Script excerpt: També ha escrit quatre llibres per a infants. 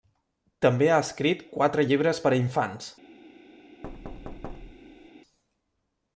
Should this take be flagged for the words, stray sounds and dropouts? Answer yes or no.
yes